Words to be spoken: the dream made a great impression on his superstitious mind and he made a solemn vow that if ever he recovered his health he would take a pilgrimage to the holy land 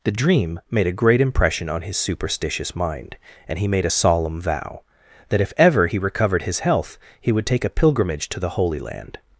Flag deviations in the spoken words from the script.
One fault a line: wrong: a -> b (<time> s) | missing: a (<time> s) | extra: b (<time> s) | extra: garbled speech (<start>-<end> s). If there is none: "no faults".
no faults